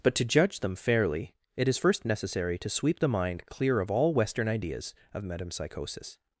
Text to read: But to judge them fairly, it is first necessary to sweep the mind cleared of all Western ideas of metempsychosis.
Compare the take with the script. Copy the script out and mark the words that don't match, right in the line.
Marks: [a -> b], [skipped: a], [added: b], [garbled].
But to judge them fairly, it is first necessary to sweep the mind [cleared -> clear] of all Western ideas of metempsychosis.